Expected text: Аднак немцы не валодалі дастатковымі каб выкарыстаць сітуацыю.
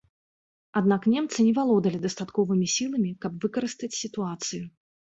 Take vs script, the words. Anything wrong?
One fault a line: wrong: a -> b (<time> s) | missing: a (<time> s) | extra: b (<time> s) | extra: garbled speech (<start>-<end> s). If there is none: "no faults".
extra: сіламі (2.8 s)